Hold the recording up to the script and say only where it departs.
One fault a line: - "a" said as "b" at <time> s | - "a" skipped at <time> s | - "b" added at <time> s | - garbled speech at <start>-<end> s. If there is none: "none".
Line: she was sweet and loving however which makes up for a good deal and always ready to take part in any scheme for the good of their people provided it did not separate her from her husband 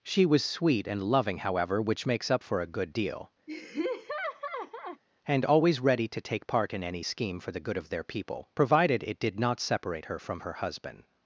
none